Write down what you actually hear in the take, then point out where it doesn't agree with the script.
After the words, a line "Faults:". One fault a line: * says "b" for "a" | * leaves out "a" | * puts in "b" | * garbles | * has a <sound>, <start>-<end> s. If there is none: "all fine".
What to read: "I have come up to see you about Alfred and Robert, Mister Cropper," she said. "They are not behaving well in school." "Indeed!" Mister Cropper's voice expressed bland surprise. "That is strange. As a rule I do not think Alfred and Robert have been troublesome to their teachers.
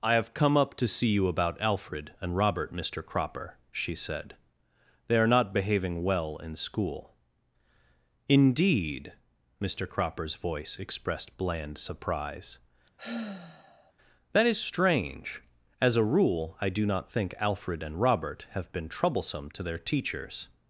"I have come up to see you about Alfred and Robert, Mister Cropper," she said. "They are not behaving well in school." "Indeed!" Mister Cropper's voice expressed bland surprise. "That is strange. As a rule I do not think Alfred and Robert have been troublesome to their teachers.
Faults:
* has a sigh, 13.0-13.9 s